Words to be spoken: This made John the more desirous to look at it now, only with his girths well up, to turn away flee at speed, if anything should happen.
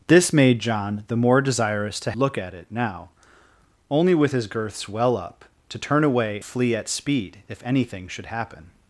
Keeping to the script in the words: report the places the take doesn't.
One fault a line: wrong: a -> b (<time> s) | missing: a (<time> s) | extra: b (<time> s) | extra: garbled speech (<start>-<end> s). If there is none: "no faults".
no faults